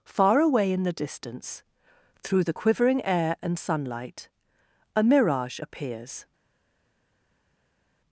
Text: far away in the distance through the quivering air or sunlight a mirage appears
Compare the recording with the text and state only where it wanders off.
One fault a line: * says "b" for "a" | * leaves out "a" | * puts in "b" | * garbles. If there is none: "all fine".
* says "and" for "or"